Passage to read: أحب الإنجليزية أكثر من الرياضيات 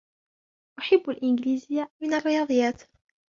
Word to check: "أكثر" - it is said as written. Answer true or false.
false